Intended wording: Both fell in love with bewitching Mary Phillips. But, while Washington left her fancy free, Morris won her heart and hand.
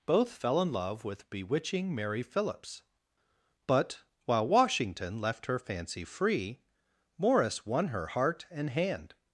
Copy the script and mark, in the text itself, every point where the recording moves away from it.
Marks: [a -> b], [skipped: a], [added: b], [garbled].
Both fell in love with bewitching Mary Phillips. But, while Washington left her fancy free, Morris won her heart and hand.